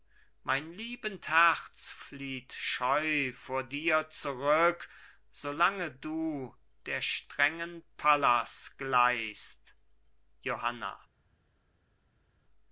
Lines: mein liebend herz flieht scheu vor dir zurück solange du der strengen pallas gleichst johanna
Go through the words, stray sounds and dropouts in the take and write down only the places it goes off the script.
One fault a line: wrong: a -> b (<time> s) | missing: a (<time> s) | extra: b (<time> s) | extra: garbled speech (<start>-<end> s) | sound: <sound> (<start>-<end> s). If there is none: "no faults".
no faults